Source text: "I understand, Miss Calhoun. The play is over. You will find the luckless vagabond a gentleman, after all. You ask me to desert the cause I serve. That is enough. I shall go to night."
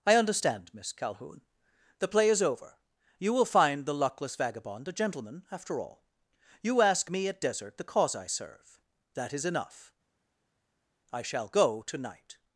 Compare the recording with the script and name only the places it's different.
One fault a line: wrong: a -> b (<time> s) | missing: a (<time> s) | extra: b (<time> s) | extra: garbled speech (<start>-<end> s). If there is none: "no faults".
wrong: to -> at (7.3 s)